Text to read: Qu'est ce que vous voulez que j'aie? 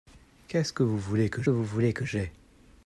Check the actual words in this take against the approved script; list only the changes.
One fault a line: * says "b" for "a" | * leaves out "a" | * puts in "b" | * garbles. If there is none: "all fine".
* puts in "vous voulez que"